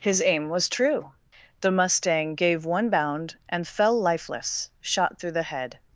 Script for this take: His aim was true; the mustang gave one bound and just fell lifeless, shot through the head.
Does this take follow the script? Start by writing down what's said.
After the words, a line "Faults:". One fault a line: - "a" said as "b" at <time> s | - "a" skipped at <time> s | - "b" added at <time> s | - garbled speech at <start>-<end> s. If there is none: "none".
His aim was true; the mustang gave one bound and fell lifeless, shot through the head.
Faults:
- "just" skipped at 3.7 s